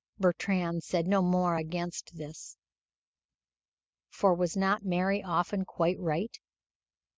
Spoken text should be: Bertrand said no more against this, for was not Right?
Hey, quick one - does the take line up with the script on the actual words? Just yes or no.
no